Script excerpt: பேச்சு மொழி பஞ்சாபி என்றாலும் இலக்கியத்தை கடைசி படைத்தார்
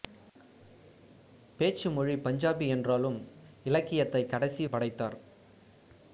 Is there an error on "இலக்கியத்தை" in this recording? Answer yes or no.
no